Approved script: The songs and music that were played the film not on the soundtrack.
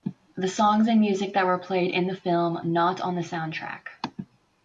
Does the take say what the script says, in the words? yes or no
no